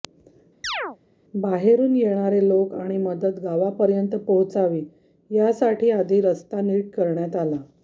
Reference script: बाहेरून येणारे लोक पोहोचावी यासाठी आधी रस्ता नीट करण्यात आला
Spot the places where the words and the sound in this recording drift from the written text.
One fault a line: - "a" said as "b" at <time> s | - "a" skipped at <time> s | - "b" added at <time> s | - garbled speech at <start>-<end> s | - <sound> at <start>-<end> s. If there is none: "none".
- chirp at 0.6-1.0 s
- "आणि मदत गावापर्यंत" added at 2.7 s